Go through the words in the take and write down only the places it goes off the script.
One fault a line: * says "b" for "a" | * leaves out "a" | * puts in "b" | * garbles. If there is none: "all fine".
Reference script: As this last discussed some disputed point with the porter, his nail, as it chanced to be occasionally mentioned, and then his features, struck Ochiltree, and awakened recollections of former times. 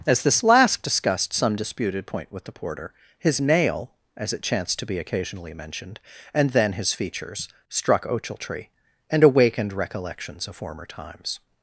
all fine